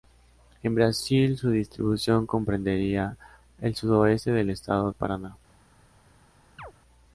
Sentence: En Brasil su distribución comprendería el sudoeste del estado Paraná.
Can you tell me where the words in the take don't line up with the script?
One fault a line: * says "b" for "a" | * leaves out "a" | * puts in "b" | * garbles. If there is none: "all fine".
all fine